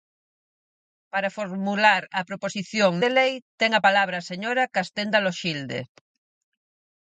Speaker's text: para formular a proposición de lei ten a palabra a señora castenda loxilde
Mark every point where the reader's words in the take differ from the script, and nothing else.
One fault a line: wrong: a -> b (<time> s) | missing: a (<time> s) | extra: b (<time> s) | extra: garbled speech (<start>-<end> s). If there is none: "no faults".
no faults